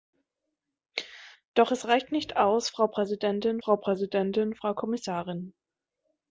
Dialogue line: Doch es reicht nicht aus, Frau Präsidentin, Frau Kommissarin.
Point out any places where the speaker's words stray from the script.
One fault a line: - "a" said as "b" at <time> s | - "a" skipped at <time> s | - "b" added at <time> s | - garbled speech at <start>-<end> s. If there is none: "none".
- "Präsidentin Frau" added at 3.8 s